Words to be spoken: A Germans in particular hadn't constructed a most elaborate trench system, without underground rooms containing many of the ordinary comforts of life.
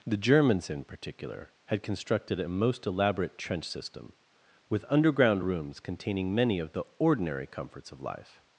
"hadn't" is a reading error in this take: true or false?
true